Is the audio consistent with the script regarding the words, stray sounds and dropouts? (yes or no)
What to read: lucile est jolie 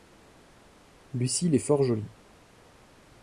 no